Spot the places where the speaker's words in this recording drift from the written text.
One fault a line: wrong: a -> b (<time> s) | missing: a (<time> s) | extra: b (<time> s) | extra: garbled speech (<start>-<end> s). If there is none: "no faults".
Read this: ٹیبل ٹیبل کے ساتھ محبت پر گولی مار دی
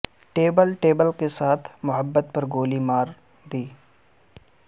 no faults